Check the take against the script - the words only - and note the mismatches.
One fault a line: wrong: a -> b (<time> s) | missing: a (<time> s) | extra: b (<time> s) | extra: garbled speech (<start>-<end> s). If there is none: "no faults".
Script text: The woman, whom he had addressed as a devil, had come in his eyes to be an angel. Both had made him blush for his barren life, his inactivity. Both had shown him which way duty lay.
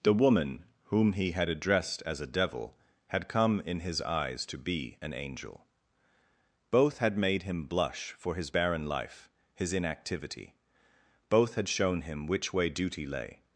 no faults